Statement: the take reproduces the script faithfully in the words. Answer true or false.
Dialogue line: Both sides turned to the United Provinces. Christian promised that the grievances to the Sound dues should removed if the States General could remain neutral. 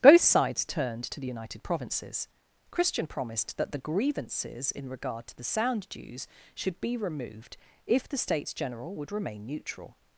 false